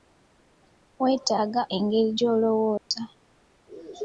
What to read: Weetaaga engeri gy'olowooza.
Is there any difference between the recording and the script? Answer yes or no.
no